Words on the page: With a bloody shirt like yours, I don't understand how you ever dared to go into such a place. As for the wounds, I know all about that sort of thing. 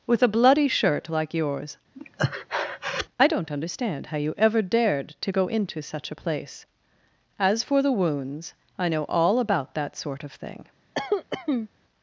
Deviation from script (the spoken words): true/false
false